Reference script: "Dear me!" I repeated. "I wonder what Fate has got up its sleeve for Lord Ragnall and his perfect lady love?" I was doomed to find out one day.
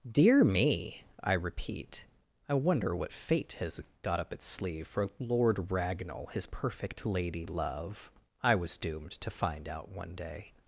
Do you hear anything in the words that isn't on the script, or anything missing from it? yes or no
yes